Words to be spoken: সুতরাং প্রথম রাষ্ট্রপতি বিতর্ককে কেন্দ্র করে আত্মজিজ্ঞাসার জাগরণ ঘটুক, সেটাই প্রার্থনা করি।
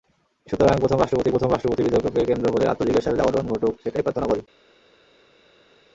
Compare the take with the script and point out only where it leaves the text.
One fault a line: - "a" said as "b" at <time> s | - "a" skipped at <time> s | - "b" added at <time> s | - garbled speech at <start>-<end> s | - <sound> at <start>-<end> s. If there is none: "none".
- "প্রথম রাষ্ট্রপতি" added at 1.3 s